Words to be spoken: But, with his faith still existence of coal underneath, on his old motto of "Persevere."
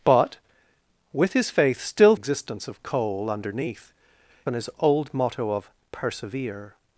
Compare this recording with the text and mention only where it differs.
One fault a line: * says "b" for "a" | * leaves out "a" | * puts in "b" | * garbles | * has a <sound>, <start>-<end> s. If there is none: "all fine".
all fine